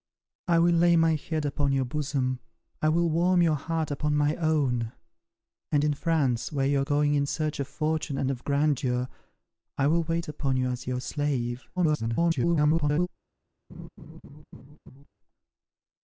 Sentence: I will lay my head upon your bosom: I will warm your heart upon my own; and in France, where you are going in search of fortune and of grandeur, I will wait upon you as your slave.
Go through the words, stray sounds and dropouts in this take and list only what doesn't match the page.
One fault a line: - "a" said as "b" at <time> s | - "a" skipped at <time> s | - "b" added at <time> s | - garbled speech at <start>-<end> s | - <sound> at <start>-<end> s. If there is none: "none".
- garbled speech at 11.8-13.1 s
- laugh at 13.7-15.1 s